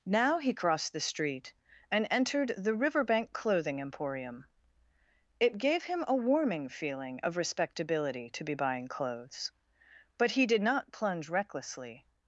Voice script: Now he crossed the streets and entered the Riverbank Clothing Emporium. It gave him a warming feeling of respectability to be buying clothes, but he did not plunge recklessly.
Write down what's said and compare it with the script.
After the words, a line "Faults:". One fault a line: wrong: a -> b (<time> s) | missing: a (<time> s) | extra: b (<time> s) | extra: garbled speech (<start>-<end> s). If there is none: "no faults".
Now he crossed the street and entered the Riverbank Clothing Emporium. It gave him a warming feeling of respectability to be buying clothes, but he did not plunge recklessly.
Faults:
wrong: streets -> street (1.0 s)